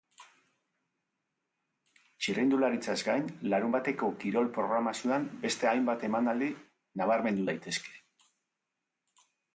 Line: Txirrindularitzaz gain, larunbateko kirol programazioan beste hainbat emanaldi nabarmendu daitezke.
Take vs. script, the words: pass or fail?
pass